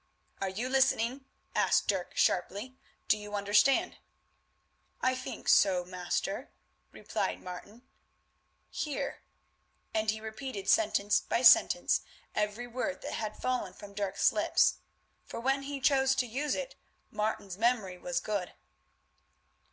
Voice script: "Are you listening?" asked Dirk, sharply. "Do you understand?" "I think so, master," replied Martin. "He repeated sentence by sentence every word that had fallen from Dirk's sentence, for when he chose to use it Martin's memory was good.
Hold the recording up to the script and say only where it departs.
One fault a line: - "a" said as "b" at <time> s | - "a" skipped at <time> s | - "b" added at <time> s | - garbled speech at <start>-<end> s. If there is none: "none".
- "Hear and" added at 8.7 s
- "sentence" said as "lips" at 14.3 s